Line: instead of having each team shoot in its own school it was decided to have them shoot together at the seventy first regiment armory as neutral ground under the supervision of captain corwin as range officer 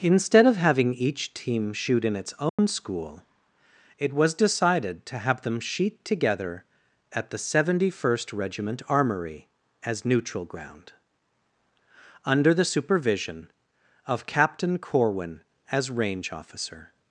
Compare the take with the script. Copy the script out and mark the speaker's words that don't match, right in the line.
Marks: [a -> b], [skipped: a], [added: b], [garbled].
instead of having each team shoot in its own school it was decided to have them [shoot -> sheet] together at the seventy first regiment armory as neutral ground under the supervision of captain corwin as range officer